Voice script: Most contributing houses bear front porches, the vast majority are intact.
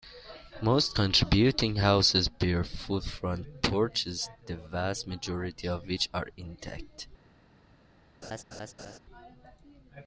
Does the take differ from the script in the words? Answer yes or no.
yes